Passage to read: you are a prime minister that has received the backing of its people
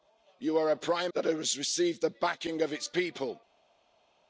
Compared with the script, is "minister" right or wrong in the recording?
wrong